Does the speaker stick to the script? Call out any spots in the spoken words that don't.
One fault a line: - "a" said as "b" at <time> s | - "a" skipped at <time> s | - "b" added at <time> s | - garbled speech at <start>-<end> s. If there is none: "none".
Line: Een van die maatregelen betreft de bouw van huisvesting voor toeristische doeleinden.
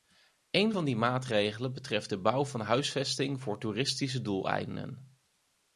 none